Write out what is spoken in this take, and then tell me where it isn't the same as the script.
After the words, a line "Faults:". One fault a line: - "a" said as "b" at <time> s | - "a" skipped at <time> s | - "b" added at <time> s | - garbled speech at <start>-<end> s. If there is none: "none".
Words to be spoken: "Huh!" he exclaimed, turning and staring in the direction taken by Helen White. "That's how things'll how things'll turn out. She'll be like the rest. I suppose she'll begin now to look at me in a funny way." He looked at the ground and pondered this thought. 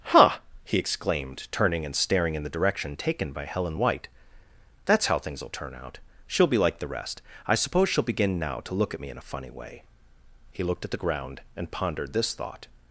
"Huh!" he exclaimed, turning and staring in the direction taken by Helen White. "That's how things'll turn out. She'll be like the rest. I suppose she'll begin now to look at me in a funny way." He looked at the ground and pondered this thought.
Faults:
- "how things'll" skipped at 5.5 s